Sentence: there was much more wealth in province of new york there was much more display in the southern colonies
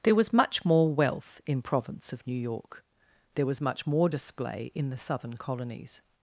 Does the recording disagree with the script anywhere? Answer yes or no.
no